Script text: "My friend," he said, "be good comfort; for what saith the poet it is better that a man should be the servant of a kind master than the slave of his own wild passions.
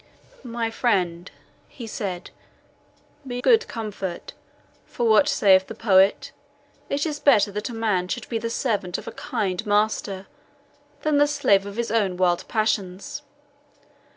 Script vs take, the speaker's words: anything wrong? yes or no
no